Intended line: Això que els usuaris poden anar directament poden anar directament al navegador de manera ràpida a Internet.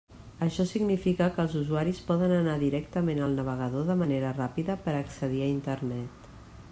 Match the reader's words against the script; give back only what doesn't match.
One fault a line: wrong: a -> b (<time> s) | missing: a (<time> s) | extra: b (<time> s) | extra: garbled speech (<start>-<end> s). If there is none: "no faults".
extra: significa (0.7 s)
missing: poden anar directament (3.2 s)
extra: per accedir (4.9 s)